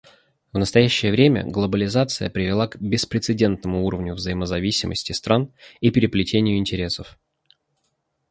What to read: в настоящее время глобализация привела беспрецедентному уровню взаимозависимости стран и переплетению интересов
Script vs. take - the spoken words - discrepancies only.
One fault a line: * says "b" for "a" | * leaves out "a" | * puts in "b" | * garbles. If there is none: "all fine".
* puts in "к"